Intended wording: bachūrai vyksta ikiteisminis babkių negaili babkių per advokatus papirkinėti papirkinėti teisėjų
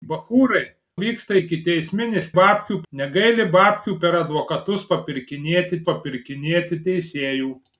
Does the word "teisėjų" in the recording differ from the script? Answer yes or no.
no